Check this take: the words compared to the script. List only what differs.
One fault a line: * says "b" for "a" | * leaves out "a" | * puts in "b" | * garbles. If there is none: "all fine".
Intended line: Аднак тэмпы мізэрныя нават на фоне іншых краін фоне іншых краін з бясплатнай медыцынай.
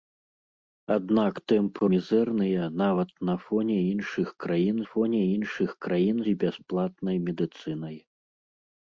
all fine